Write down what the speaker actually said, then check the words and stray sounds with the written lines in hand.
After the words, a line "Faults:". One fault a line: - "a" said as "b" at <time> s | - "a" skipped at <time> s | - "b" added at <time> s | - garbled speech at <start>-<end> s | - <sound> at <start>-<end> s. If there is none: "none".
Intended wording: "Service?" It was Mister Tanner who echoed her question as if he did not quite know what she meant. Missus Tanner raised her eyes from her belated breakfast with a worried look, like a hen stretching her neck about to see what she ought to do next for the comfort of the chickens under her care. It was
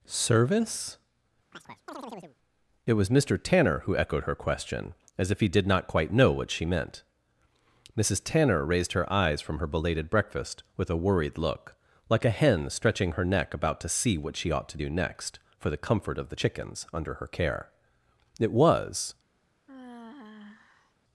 "Service?" It was Mister Tanner who echoed her question as if he did not quite know what she meant. Missus Tanner raised her eyes from her belated breakfast with a worried look, like a hen stretching her neck about to see what she ought to do next for the comfort of the chickens under her care. It was
Faults:
- chirp at 1.5-2.4 s
- sigh at 19.7-20.9 s